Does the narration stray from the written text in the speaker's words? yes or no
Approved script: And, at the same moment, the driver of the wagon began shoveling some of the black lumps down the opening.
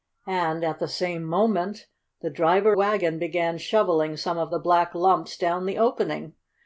yes